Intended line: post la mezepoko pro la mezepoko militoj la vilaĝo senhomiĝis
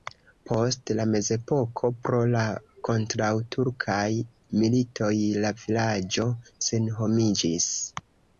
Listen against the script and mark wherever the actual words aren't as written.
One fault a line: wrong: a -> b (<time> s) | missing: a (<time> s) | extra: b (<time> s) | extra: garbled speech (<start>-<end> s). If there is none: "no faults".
wrong: mezepoko -> kontraŭturkaj (2.9 s)